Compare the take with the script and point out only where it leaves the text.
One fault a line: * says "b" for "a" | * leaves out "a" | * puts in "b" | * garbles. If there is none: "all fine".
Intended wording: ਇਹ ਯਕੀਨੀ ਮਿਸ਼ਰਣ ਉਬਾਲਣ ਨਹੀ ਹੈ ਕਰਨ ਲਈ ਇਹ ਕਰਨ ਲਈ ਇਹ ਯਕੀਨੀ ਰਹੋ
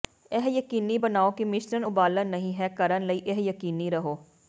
* puts in "ਬਣਾਓ ਕਿ"
* leaves out "ਕਰਨ ਲਈ ਇਹ"